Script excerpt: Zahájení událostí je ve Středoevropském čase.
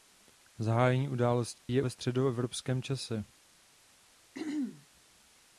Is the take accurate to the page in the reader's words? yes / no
yes